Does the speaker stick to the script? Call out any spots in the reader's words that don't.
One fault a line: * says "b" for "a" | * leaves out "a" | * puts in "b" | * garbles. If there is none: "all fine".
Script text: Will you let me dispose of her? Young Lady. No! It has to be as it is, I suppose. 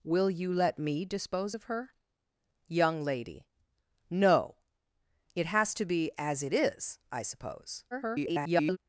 * garbles